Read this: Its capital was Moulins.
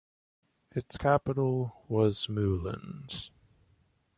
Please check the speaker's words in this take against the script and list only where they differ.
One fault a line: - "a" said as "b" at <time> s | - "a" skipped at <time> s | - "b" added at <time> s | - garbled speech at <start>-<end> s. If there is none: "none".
none